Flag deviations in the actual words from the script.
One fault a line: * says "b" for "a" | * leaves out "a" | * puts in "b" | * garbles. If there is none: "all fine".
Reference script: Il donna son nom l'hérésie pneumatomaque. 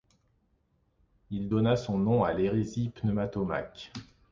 * puts in "à"